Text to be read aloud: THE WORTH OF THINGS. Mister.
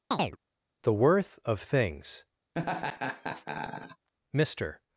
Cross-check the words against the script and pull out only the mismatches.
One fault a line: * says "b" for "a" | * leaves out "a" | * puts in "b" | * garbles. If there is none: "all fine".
all fine